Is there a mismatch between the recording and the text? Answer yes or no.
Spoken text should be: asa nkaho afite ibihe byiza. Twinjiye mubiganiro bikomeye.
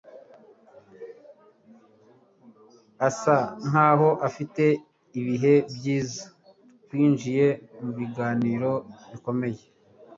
no